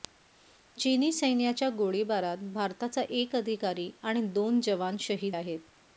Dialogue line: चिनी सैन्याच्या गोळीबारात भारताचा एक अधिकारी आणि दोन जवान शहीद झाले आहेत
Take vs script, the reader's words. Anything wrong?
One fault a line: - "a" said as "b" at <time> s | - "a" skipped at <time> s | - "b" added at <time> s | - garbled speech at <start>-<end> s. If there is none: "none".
- "झाले" skipped at 5.3 s